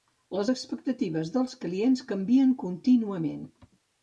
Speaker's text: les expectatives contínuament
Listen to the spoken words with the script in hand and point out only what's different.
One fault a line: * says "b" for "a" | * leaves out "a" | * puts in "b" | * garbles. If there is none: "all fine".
* puts in "dels clients canvien"